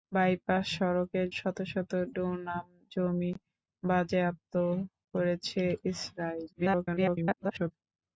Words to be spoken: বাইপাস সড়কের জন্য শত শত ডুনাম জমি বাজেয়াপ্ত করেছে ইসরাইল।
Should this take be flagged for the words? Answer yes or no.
yes